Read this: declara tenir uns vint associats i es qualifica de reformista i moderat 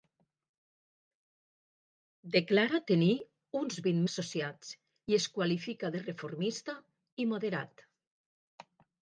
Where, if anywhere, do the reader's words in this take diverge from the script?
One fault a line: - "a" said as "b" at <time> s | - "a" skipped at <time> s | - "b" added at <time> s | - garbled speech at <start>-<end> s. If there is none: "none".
none